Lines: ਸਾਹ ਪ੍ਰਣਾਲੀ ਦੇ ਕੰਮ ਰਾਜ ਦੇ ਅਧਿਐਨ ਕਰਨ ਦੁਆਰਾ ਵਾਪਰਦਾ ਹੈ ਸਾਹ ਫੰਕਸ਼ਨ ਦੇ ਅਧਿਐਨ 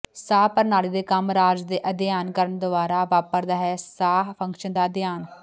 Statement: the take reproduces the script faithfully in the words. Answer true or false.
false